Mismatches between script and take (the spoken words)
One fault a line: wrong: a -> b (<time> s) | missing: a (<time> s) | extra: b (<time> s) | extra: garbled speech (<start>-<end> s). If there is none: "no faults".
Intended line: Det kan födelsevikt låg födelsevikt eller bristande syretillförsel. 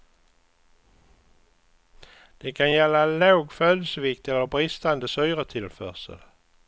wrong: födelsevikt -> gälla (2.7 s)